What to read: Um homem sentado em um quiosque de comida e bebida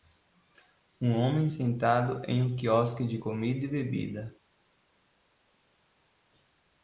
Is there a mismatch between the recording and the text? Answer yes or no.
no